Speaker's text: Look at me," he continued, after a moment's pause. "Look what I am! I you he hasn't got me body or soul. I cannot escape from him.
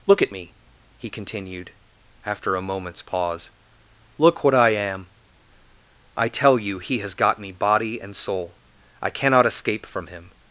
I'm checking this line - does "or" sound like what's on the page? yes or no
no